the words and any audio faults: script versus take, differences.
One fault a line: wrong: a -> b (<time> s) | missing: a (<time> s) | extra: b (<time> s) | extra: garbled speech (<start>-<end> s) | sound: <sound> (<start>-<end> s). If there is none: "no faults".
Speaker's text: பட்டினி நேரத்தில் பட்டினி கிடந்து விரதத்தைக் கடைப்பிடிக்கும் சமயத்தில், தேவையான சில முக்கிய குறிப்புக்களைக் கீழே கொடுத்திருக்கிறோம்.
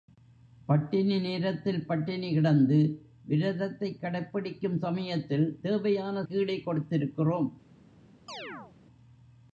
missing: சில முக்கிய குறிப்புக்களைக் (6.2 s)
sound: chirp (8.3-8.8 s)